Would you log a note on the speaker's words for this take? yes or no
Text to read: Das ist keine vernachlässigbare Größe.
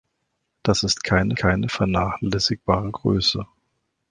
yes